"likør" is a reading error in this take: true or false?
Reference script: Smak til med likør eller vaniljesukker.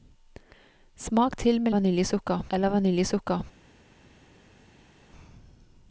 true